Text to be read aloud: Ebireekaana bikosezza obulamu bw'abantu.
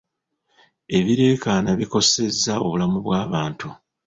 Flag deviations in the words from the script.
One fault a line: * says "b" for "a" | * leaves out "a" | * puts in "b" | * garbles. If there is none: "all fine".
all fine